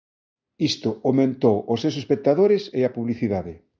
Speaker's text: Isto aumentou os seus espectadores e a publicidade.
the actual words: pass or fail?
pass